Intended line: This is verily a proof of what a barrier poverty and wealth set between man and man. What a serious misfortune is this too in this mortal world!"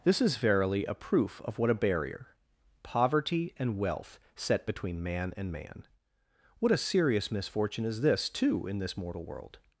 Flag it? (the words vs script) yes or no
no